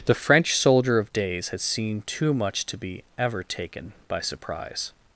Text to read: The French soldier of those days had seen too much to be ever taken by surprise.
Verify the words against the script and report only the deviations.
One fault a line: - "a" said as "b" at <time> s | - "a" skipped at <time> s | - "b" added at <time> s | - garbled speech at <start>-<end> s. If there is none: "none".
- "those" skipped at 1.1 s